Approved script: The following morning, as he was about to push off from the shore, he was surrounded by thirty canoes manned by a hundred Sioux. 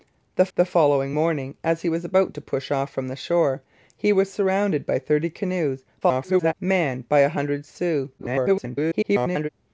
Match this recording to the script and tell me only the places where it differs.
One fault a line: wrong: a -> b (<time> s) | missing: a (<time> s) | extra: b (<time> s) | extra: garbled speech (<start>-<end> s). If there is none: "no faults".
extra: the (0.5 s)
extra: garbled speech (6.0-6.5 s)
extra: garbled speech (8.2-9.5 s)